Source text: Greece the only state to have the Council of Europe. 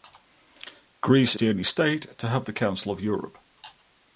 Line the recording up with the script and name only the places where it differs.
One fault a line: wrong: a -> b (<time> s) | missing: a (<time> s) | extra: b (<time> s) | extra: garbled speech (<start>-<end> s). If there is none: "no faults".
no faults